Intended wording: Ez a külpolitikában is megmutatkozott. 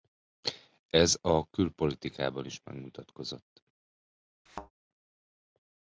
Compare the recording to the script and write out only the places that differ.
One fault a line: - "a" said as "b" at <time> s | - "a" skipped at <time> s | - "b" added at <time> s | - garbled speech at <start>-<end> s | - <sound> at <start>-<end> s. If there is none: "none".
- thud at 4.5-4.7 s